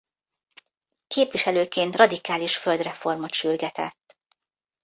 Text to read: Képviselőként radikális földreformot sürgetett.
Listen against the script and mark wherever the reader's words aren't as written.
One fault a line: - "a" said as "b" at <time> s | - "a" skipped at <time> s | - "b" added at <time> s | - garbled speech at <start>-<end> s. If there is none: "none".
none